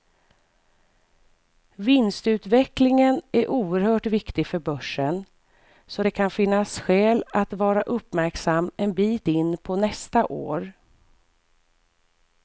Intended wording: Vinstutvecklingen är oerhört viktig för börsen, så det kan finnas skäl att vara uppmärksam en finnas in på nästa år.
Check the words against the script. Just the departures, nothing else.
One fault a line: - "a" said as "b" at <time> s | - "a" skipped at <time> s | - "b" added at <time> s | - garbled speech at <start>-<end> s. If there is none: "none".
- "finnas" said as "bit" at 8.9 s